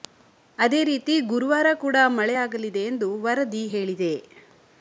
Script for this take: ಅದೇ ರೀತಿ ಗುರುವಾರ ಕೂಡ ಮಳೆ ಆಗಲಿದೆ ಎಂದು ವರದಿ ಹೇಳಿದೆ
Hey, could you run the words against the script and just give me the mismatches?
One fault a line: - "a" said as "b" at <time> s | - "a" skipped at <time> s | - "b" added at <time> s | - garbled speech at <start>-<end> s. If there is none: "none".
none